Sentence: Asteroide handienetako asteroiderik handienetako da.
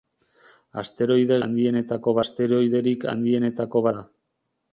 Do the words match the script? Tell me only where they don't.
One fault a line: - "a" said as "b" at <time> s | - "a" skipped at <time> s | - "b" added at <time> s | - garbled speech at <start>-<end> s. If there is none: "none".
none